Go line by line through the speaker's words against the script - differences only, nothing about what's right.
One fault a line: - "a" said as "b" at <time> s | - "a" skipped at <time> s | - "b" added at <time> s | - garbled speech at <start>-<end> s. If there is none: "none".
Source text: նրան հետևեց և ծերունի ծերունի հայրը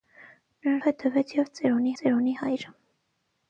none